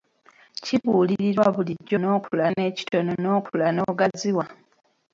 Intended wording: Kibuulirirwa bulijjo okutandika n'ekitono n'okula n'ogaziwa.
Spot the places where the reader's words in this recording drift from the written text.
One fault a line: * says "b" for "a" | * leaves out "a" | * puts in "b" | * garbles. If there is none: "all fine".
* says "n'okula" for "okutandika"